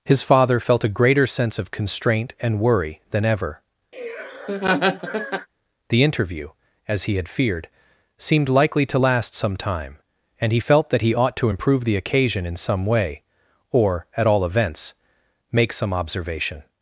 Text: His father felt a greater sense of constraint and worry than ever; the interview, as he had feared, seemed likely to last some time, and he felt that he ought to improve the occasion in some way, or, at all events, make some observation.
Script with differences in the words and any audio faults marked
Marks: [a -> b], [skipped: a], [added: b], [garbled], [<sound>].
His father felt a greater sense of constraint and worry than ever; [laugh] the interview, as he had feared, seemed likely to last some time, and he felt that he ought to improve the occasion in some way, or, at all events, make some observation.